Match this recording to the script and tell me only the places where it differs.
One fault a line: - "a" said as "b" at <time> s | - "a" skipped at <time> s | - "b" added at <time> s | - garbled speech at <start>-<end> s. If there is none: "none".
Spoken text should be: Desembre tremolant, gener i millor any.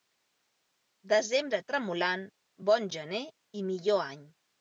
- "bon" added at 2.7 s